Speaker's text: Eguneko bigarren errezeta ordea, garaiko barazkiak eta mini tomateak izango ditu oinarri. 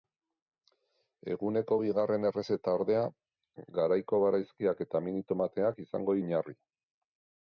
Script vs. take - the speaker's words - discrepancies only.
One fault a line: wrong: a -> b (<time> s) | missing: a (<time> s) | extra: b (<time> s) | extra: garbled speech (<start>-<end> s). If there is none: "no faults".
missing: ditu (6.2 s)